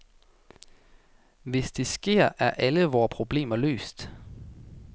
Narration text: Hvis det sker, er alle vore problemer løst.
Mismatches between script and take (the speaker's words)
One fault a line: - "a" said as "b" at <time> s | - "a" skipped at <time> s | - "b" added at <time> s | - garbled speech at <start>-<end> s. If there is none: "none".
none